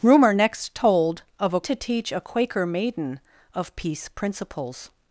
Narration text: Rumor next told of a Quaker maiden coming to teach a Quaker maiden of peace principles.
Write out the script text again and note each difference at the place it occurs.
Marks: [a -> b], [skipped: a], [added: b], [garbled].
Rumor next told of a [skipped: Quaker maiden coming] to teach a Quaker maiden of peace principles.